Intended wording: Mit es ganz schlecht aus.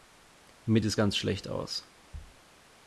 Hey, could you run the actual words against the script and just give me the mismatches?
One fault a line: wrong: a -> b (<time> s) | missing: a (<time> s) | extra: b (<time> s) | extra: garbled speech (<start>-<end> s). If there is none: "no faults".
no faults